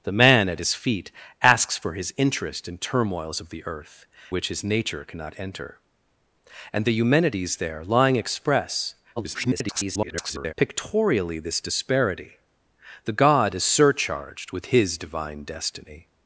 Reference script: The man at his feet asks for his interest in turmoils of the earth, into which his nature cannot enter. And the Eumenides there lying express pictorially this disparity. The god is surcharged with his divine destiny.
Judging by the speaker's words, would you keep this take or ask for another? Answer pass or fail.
fail